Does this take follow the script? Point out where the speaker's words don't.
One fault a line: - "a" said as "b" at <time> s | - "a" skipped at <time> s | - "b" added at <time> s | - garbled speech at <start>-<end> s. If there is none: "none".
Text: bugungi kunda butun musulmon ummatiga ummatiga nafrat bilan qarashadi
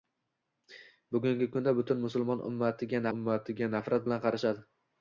none